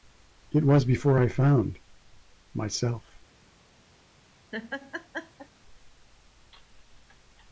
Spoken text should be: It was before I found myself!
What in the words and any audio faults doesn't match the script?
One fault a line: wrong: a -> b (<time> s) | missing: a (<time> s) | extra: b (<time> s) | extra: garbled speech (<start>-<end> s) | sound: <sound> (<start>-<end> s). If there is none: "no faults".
sound: laugh (4.5-5.5 s)